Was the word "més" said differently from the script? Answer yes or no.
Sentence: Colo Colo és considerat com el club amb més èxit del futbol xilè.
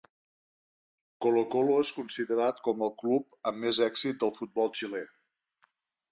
no